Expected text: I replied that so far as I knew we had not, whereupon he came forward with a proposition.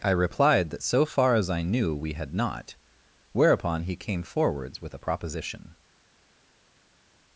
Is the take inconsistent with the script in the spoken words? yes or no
yes